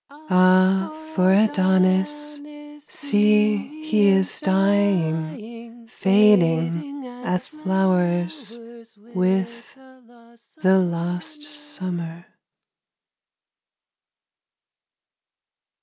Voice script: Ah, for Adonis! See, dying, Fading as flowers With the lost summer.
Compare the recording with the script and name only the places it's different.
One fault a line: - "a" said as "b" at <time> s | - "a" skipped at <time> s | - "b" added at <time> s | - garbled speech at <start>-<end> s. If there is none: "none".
- "he is" added at 3.8 s